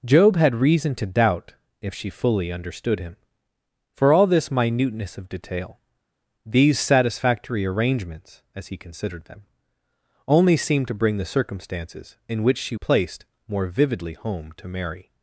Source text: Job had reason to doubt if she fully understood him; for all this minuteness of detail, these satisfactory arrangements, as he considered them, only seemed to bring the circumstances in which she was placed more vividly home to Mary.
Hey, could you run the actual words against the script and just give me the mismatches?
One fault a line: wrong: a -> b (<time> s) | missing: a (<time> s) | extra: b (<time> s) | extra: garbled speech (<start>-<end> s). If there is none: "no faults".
missing: was (12.7 s)